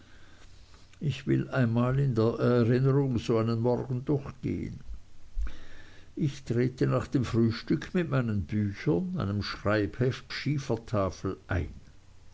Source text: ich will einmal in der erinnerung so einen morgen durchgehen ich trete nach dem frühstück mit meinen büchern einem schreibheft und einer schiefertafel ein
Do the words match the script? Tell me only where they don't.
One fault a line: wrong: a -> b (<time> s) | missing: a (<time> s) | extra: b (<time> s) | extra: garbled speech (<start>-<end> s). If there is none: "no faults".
missing: und einer (10.3 s)